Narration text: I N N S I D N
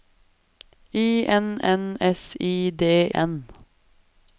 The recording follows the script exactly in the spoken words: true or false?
true